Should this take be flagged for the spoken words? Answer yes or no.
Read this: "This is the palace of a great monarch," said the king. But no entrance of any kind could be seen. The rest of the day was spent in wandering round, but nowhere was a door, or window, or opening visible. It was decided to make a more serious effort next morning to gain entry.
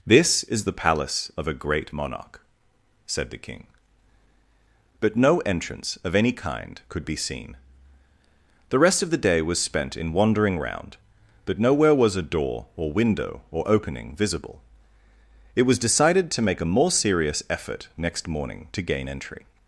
no